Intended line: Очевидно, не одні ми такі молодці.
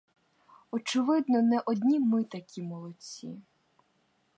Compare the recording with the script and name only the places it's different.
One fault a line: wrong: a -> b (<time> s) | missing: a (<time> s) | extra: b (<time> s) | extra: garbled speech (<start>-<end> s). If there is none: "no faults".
no faults